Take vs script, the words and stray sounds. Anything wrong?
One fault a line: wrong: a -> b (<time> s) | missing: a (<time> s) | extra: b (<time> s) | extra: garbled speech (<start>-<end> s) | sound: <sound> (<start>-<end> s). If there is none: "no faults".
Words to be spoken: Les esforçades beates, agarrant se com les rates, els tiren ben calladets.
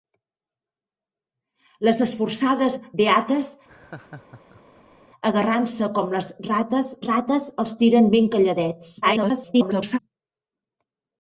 sound: laugh (3.7-5.0 s)
extra: rates (7.1 s)
extra: garbled speech (9.0-10.0 s)